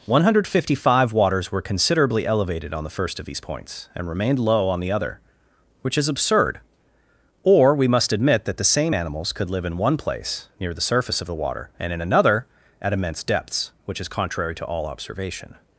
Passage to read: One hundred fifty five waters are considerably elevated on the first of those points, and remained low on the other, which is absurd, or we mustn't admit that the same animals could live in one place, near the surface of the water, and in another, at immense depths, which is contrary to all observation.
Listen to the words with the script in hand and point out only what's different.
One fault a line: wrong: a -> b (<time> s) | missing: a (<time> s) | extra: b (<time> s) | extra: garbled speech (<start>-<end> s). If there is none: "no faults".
wrong: are -> were (1.5 s)
wrong: those -> these (3.3 s)
wrong: mustn't -> must (7.9 s)